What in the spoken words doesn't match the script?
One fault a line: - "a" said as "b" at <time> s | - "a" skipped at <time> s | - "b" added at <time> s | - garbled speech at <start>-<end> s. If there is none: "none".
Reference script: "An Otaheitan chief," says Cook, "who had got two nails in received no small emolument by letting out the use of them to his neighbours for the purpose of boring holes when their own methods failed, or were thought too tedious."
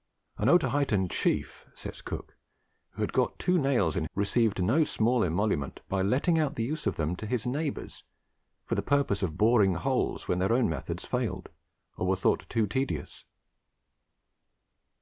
none